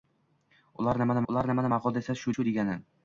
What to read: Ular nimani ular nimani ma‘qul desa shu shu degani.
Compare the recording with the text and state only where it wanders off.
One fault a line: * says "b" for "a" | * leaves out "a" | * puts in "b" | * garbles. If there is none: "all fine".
all fine